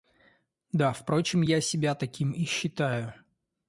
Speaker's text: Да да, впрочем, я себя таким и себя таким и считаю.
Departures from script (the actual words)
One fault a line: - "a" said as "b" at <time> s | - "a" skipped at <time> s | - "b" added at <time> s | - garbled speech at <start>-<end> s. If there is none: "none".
- "да" skipped at 0.9 s
- "себя таким и" skipped at 2.5 s